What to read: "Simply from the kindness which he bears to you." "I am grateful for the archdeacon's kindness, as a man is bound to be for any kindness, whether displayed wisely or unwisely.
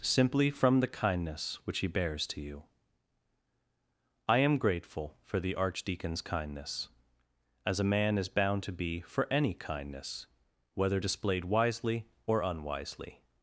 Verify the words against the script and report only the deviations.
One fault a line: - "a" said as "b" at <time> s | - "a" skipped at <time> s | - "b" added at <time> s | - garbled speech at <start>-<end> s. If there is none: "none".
none